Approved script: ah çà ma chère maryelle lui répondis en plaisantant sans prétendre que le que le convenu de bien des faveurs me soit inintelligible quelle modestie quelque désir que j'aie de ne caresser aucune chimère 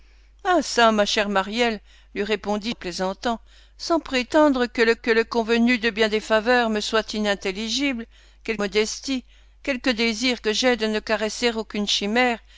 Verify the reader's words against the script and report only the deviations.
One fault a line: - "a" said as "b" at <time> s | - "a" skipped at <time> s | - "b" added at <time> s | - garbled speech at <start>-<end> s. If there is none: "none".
none